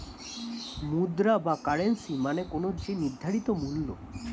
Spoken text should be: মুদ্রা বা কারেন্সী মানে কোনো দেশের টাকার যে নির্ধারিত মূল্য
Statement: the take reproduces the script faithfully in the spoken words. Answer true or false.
false